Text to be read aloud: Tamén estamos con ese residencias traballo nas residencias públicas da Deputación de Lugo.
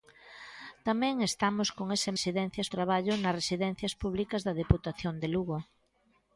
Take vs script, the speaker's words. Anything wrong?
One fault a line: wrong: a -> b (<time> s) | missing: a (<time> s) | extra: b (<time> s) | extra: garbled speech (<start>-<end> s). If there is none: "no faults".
no faults